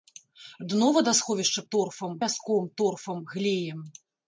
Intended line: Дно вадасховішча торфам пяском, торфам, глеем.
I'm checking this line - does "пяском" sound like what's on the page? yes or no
yes